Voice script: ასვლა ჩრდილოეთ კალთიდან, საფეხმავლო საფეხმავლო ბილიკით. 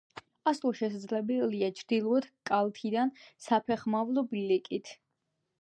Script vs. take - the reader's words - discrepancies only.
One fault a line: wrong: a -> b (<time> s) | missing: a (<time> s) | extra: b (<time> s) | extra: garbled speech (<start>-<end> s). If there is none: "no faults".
extra: შესაძლებელია (0.8 s)
missing: საფეხმავლო (4.3 s)